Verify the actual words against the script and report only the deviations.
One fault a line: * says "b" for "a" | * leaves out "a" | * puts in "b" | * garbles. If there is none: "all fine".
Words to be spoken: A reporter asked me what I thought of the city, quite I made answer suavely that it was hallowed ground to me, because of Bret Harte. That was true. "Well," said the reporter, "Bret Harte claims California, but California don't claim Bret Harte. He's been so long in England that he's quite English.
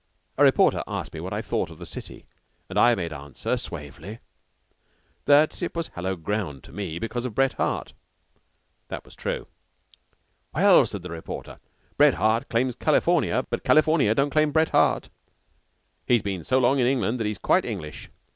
* says "and" for "quite"